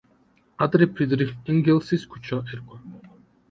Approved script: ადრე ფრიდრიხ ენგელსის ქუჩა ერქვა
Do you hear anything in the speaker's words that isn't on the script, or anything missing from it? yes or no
no